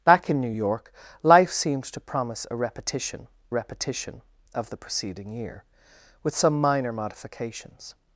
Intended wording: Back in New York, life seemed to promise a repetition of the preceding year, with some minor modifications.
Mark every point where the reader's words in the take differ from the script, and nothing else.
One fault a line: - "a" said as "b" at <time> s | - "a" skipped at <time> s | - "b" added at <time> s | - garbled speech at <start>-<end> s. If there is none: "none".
- "repetition" added at 3.5 s